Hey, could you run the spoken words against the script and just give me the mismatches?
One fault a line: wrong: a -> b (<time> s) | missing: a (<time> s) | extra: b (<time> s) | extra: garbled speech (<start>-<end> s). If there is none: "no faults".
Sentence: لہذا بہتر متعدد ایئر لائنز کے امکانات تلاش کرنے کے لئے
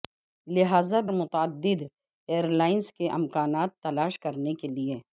missing: بہتر (1.0 s)